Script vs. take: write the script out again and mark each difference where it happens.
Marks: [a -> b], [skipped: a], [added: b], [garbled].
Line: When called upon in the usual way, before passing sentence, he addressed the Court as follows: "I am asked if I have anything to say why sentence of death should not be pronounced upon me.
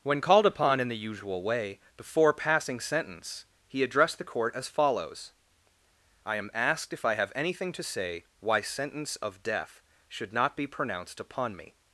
When called upon in the usual way, before passing sentence, he addressed the Court as follows: "I am asked if I have anything to say why sentence of death should not be pronounced upon me.